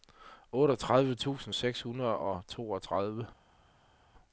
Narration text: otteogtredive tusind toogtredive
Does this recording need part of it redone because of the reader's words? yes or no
yes